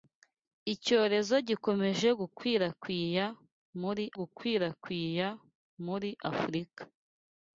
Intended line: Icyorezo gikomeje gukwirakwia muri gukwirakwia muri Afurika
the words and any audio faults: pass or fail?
pass